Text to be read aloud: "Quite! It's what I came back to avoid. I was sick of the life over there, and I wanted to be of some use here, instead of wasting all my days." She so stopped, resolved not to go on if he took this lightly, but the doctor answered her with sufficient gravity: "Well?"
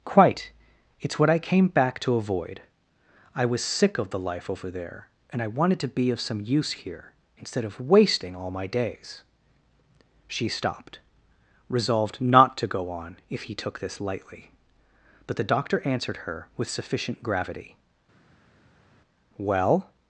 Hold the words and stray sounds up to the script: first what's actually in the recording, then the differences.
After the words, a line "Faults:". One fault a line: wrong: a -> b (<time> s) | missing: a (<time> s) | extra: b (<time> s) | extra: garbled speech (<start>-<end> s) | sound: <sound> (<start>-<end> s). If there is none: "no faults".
"Quite! It's what I came back to avoid. I was sick of the life over there, and I wanted to be of some use here, instead of wasting all my days." She stopped, resolved not to go on if he took this lightly, but the doctor answered her with sufficient gravity: "Well?"
Faults:
missing: so (10.5 s)